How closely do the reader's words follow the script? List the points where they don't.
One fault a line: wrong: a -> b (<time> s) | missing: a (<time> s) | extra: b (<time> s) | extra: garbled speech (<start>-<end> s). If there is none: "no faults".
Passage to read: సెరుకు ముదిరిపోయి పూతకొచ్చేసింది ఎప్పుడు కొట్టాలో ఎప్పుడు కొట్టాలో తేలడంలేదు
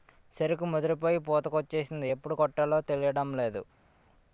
missing: ఎప్పుడు కొట్టాలో (2.8 s)